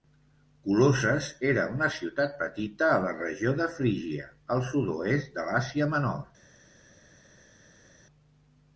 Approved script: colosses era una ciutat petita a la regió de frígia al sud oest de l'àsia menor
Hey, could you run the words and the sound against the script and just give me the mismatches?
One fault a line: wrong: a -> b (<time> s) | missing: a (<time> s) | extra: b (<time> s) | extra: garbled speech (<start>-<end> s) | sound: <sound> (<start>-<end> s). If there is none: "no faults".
no faults